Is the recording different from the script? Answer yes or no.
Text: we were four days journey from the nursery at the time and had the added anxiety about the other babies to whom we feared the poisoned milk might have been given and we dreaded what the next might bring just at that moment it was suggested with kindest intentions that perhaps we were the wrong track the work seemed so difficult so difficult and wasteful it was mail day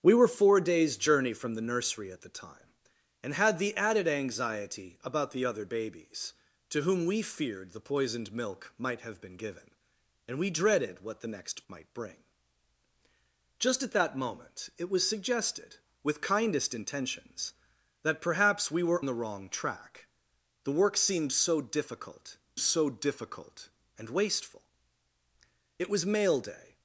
no